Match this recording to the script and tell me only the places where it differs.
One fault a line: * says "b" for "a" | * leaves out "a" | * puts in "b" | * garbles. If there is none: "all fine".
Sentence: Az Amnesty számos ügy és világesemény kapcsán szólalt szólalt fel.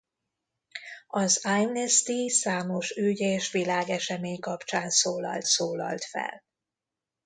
all fine